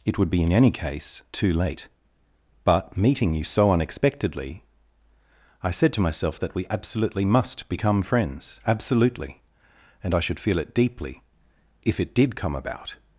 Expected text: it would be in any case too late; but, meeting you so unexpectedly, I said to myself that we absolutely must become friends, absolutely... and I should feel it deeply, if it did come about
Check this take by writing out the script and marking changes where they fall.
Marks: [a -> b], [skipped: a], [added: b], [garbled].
it would be in any case too late; but, meeting you so unexpectedly, I said to myself that we absolutely must become friends, absolutely... and I should feel it deeply, if it did come about